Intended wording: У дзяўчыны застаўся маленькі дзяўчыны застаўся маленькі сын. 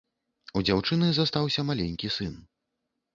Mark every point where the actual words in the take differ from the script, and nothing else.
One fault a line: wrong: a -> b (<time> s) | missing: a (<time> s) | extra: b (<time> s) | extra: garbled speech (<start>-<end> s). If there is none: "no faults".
missing: дзяўчыны застаўся маленькі (2.1 s)